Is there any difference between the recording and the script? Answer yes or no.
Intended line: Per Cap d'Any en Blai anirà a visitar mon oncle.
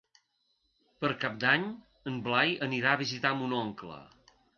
no